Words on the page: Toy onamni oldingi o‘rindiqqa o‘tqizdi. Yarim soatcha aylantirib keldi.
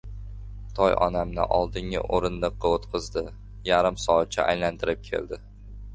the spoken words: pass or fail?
pass